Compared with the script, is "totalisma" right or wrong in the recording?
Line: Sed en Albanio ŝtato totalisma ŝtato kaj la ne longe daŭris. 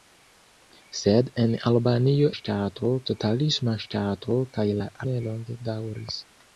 right